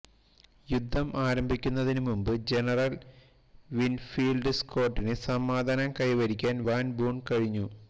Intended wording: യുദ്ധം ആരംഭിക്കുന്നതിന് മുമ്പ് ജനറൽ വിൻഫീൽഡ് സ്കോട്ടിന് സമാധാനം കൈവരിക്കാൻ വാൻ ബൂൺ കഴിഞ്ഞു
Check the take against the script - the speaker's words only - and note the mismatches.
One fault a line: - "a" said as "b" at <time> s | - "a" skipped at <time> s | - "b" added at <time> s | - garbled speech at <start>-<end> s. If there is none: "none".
none